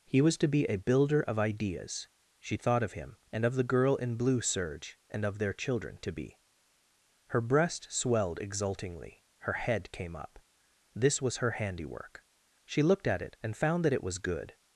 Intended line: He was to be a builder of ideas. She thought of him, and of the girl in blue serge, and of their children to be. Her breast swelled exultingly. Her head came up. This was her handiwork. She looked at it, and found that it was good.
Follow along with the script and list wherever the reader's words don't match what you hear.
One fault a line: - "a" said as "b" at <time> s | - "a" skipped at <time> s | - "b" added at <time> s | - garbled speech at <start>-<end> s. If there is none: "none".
none